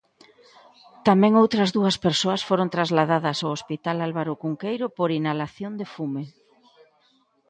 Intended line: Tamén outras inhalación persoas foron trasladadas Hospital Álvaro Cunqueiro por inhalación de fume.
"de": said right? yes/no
yes